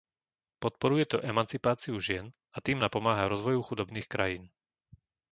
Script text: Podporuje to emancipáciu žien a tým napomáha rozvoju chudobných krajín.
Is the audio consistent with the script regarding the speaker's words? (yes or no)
yes